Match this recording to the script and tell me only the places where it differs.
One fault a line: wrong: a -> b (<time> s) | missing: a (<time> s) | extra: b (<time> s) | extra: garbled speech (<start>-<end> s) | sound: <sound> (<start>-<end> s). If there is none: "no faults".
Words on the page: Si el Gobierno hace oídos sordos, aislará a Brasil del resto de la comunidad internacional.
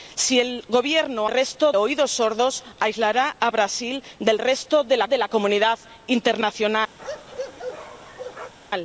wrong: hace -> resto (1.3 s)
extra: de la (5.1 s)
sound: bark (7.0-8.5 s)